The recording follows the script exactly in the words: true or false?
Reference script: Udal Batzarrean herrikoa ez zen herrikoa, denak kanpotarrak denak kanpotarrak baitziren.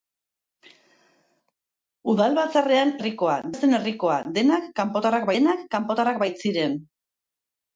true